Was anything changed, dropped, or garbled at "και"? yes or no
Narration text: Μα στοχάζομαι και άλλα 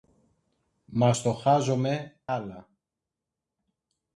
yes